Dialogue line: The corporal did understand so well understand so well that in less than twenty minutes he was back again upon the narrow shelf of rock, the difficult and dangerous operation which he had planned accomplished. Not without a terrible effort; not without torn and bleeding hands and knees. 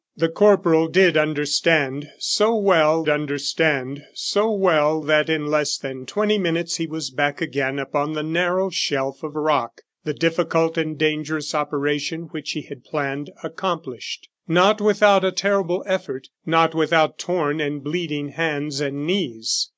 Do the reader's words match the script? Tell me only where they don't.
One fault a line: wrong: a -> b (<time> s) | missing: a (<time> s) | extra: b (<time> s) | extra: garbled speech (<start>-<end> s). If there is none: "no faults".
no faults